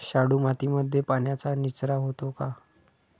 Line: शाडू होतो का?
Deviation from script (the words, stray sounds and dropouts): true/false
true